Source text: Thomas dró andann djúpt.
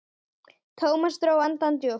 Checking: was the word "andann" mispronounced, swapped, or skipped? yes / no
no